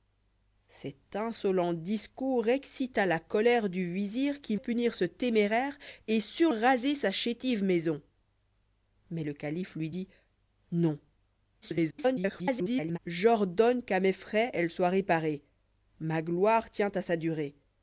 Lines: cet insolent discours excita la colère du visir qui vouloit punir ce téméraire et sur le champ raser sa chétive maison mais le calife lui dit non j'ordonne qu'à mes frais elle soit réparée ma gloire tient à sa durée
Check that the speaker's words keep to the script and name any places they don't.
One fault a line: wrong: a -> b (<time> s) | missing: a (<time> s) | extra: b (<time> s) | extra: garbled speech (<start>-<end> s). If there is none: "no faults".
missing: vouloit (4.5 s)
missing: le champ (6.5 s)
extra: garbled speech (11.6-13.0 s)